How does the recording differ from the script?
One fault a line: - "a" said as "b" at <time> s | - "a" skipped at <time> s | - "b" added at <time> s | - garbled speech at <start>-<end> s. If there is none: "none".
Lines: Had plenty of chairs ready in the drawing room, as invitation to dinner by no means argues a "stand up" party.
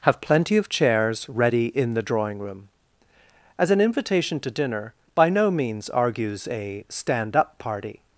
- "Had" said as "Have" at 0.1 s
- "an" added at 3.7 s